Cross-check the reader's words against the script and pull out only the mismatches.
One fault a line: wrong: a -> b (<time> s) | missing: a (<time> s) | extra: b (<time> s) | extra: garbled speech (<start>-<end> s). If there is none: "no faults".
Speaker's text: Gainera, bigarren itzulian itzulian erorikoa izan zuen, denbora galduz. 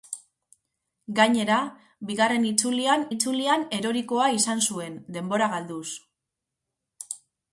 no faults